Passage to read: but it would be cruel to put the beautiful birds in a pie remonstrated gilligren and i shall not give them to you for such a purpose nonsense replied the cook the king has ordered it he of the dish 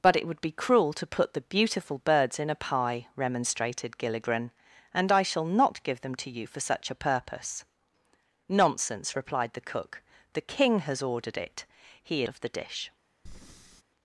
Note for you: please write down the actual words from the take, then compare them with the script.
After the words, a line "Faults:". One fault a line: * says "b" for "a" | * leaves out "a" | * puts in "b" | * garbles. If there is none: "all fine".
but it would be cruel to put the beautiful birds in a pie remonstrated gilligren and i shall not give them to you for such a purpose nonsense replied the cook the king has ordered it he of the dish
Faults:
all fine